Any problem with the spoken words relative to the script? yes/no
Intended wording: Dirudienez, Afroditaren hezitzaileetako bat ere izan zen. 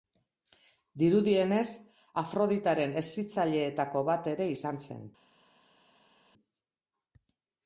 no